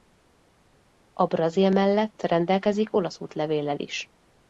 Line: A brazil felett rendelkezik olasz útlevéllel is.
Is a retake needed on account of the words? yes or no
yes